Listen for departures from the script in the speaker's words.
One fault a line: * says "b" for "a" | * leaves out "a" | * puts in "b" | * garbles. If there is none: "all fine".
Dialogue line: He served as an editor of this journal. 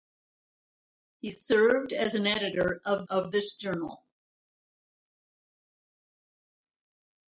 * puts in "of"